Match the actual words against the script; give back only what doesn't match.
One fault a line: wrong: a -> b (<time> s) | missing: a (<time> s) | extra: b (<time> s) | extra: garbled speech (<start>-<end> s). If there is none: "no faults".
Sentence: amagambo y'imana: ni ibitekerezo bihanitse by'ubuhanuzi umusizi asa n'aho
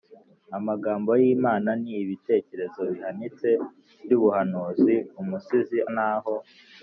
missing: asa (5.8 s)